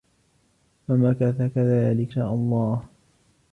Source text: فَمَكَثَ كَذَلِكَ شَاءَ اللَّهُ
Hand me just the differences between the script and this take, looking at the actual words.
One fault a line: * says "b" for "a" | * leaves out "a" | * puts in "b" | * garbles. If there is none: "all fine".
all fine